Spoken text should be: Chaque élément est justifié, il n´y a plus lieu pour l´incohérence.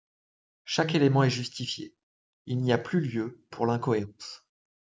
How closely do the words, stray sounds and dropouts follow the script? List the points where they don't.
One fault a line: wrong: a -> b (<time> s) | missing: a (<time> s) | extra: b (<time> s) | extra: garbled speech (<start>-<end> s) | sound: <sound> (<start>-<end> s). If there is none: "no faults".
no faults